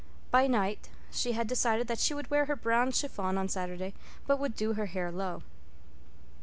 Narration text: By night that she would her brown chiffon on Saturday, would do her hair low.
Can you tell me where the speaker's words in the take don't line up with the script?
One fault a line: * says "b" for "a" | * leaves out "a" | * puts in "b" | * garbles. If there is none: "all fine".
* puts in "she had decided"
* puts in "wear"
* puts in "but"